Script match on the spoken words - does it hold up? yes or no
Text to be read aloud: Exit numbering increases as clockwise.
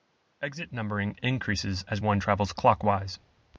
no